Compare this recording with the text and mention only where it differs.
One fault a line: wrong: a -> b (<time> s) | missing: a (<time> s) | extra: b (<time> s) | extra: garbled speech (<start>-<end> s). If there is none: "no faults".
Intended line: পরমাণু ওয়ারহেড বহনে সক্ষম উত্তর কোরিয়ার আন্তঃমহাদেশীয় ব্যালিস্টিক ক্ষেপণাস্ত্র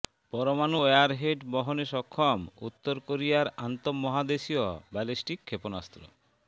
no faults